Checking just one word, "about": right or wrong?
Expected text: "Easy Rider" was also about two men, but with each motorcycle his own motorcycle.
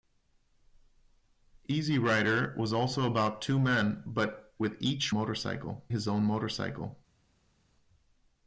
right